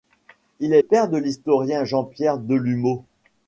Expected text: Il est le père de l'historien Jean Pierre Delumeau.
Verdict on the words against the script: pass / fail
fail